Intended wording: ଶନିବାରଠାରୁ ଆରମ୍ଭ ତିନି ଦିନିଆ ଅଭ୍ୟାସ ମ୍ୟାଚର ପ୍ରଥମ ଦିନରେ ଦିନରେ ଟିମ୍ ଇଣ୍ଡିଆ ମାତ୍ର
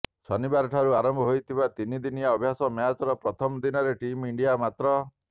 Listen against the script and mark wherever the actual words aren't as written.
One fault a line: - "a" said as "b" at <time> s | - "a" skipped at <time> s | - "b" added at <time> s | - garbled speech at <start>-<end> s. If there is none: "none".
- "ହୋଇଥିବା" added at 1.3 s
- "ଦିନରେ" skipped at 3.9 s